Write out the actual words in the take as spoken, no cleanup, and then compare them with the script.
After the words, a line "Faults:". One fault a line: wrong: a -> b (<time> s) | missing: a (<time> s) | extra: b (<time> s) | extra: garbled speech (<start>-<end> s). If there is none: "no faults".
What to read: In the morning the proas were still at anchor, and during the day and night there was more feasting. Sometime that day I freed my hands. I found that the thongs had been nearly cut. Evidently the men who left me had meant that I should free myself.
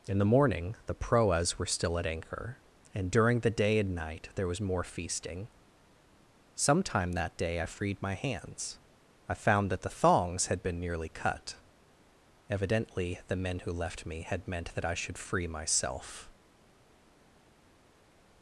In the morning the proas were still at anchor, and during the day and night there was more feasting. Sometime that day I freed my hands. I found that the thongs had been nearly cut. Evidently the men who left me had meant that I should free myself.
Faults:
no faults